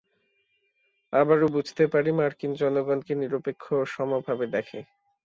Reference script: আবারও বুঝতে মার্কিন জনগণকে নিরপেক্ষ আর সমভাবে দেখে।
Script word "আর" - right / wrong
wrong